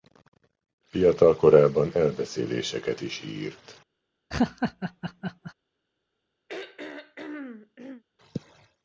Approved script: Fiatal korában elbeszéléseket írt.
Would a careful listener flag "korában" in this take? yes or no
no